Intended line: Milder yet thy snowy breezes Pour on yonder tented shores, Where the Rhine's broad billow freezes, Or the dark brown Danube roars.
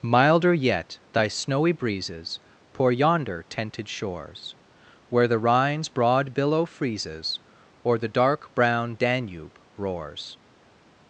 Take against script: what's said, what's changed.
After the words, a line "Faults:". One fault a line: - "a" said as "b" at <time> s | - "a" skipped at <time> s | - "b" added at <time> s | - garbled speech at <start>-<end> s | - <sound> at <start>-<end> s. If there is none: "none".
Milder yet thy snowy breezes Pour yonder tented shores, Where the Rhine's broad billow freezes, Or the dark brown Danube roars.
Faults:
- "on" skipped at 2.9 s